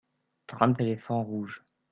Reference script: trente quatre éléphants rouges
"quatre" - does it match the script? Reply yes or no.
no